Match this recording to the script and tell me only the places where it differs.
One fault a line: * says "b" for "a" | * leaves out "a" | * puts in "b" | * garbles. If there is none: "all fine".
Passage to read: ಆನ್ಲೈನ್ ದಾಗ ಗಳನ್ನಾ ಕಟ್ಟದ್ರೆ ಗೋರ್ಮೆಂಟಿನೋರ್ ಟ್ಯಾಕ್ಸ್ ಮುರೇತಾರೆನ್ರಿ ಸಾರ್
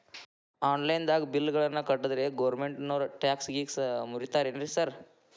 * puts in "ಬಿಲ್"
* puts in "ಗೇಸ್"